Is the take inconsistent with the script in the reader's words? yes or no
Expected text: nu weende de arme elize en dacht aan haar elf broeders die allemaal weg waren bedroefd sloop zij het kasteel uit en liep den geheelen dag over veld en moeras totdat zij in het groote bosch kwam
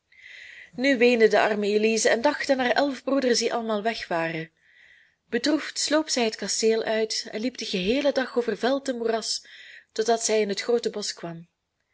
no